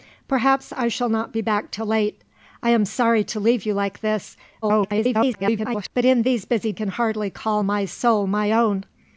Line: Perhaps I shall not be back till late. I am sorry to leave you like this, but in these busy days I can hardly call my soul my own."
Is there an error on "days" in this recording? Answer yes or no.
yes